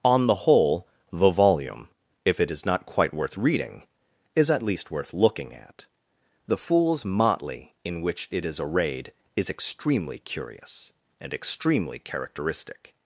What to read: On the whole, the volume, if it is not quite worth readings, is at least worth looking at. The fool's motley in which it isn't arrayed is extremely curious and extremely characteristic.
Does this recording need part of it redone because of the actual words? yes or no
yes